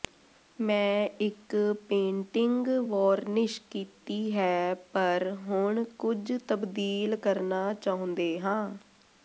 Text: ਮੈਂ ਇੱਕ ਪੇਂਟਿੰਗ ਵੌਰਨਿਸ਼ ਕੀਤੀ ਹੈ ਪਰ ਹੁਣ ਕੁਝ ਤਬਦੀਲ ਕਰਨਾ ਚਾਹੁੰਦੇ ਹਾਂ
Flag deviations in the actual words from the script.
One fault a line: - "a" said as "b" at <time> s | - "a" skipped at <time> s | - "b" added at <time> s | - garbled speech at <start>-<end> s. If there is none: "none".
none